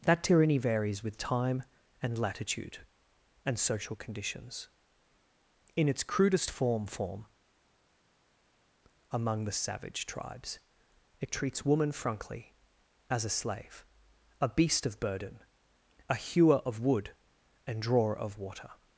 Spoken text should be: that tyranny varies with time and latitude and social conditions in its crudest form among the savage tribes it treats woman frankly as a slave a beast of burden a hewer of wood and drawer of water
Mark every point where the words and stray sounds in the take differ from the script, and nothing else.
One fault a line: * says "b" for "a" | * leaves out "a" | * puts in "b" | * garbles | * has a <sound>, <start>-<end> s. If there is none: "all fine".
* puts in "form"